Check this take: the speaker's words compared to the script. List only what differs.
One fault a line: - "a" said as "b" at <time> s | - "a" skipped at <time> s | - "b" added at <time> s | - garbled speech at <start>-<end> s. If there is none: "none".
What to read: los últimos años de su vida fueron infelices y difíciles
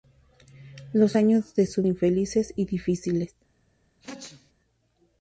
- "últimos" skipped at 1.2 s
- "vida fueron" skipped at 1.8 s